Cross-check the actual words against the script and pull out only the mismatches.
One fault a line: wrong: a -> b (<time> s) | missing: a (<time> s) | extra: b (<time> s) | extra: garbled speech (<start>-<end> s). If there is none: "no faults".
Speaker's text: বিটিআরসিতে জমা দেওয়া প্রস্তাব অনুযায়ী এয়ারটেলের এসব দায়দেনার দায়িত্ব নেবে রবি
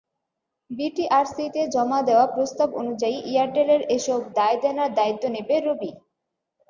no faults